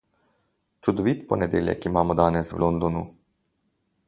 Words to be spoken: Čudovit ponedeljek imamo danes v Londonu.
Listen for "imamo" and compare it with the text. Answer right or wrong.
right